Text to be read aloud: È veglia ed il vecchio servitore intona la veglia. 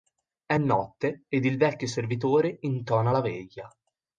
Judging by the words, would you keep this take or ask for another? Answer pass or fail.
fail